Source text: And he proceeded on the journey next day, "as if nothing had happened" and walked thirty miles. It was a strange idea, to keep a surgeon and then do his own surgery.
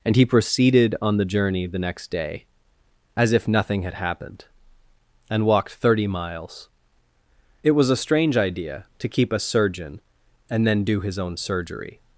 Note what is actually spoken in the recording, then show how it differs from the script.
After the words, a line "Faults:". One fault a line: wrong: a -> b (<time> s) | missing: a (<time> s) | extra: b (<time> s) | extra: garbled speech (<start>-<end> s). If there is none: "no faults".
And he proceeded on the journey the next day, "as if nothing had happened" and walked thirty miles. It was a strange idea, to keep a surgeon and then do his own surgery.
Faults:
extra: the (1.7 s)